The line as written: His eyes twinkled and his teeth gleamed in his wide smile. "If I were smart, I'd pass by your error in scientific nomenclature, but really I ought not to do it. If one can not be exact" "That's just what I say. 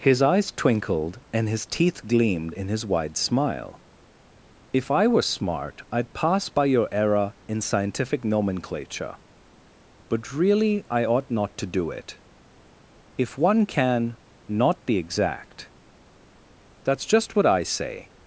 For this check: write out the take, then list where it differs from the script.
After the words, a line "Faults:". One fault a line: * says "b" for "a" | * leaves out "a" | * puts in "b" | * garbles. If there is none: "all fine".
His eyes twinkled and his teeth gleamed in his wide smile. "If I were smart, I'd pass by your error in scientific nomenclature, but really I ought not to do it. If one can not be exact" "That's just what I say.
Faults:
all fine